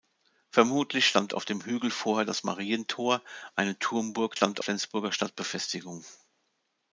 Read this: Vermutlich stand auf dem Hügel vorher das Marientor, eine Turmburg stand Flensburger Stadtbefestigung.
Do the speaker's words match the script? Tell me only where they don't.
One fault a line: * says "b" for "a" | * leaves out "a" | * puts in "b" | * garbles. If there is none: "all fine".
all fine